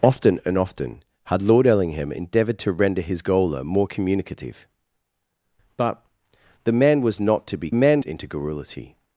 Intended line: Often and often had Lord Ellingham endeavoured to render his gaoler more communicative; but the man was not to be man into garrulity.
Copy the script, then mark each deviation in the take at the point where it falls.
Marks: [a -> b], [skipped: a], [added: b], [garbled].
Often and often had Lord Ellingham endeavoured to render his gaoler more communicative; but the man was not to be man into garrulity.